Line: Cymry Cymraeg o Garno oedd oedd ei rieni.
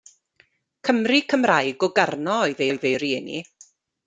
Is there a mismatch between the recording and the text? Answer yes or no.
no